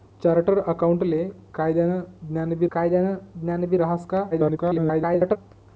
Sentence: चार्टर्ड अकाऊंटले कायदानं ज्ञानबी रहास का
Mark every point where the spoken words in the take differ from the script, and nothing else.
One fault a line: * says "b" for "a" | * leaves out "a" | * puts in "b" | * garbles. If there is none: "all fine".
* puts in "कायदानं ज्ञानबी"
* garbles